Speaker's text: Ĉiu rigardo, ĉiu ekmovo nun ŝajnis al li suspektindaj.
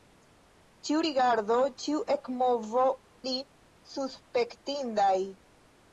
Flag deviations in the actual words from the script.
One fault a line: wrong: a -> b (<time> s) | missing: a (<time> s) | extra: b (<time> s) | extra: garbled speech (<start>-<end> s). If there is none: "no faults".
missing: nun ŝajnis al (2.8 s)